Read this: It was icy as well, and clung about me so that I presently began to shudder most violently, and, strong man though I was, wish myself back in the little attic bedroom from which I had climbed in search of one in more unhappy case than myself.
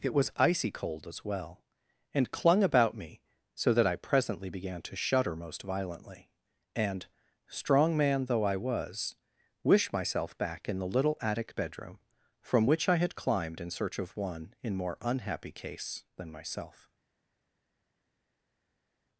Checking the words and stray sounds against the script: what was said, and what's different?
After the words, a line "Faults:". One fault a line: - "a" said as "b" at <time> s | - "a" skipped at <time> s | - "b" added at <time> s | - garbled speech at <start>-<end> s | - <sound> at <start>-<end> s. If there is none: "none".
It was icy cold as well, and clung about me so that I presently began to shudder most violently, and, strong man though I was, wish myself back in the little attic bedroom from which I had climbed in search of one in more unhappy case than myself.
Faults:
- "cold" added at 0.7 s